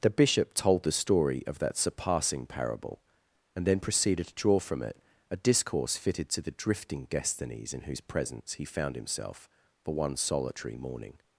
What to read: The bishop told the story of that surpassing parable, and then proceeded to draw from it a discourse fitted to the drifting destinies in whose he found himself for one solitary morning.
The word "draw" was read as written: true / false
true